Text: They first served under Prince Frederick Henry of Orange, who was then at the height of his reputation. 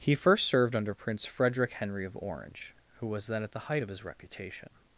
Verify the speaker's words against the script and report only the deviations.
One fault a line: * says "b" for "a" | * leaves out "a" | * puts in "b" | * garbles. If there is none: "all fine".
* says "He" for "They"